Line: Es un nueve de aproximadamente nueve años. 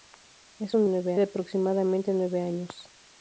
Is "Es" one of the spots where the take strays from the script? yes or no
no